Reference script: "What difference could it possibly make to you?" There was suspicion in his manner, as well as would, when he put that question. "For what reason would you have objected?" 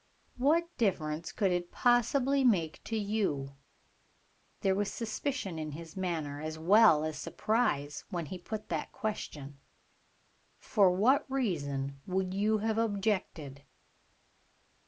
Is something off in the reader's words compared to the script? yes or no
yes